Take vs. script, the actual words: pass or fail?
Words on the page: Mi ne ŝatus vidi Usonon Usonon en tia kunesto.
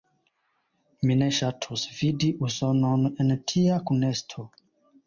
fail